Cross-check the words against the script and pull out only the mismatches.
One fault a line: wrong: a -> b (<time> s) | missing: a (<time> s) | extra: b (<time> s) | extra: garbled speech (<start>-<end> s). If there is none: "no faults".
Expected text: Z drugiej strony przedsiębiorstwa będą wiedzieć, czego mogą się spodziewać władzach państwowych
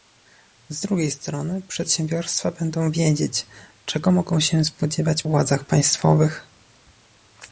no faults